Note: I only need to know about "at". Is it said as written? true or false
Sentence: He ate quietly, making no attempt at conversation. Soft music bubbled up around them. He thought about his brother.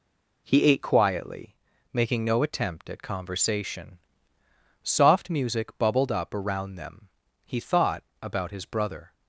true